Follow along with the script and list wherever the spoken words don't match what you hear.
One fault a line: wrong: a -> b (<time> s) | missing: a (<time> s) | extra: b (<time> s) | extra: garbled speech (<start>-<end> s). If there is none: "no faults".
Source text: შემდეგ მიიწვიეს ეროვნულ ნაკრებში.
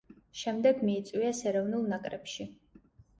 no faults